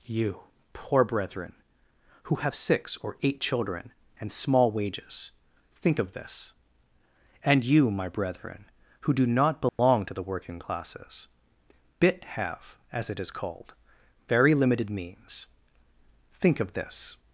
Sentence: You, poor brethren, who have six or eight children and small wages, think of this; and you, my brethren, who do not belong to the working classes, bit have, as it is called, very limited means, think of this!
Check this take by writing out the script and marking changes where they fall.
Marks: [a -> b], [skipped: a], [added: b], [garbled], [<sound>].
You, poor brethren, who have six or eight children and small wages, think of this; and you, my brethren, who do not belong [dropout] to the working classes, bit have, as it is called, very limited means, think of this!